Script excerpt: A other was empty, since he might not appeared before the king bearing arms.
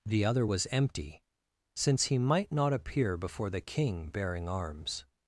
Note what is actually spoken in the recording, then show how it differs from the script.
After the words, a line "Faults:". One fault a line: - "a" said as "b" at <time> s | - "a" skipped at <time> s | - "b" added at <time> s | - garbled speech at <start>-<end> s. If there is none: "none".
The other was empty, since he might not appear before the king bearing arms.
Faults:
- "A" said as "The" at 0.1 s
- "appeared" said as "appear" at 2.7 s